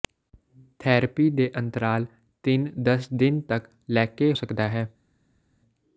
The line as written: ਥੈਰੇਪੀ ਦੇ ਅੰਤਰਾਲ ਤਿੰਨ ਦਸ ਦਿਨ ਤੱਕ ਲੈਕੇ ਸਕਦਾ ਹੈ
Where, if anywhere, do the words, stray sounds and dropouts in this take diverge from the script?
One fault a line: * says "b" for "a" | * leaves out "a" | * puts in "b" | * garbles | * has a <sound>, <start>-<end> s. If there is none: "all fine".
all fine